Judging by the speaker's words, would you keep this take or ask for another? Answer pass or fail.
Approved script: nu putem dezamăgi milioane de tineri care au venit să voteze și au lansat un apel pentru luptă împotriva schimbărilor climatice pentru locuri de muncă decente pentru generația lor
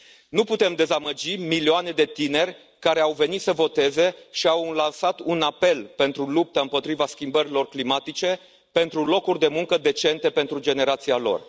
pass